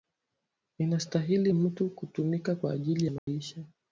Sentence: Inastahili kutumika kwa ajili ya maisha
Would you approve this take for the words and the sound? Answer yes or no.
no